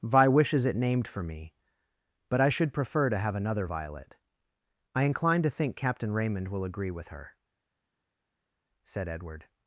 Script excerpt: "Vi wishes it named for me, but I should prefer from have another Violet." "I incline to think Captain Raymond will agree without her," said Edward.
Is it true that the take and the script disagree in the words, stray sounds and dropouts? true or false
true